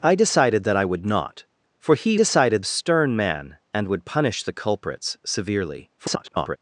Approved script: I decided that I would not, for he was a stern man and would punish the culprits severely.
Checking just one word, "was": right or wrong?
wrong